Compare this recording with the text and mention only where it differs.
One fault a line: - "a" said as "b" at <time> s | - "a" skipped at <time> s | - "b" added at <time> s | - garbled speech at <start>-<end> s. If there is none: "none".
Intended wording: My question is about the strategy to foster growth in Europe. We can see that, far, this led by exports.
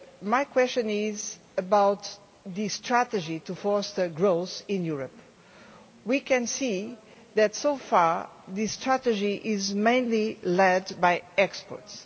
- "so" added at 7.5 s
- "strategy is mainly" added at 8.7 s